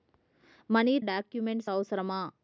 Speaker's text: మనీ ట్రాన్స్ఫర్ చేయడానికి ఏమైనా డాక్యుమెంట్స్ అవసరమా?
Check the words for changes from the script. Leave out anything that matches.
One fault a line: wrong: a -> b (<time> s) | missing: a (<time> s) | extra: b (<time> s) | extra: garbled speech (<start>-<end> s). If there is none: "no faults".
missing: ట్రాన్స్ఫర్ చేయడానికి ఏమైనా (1.0 s)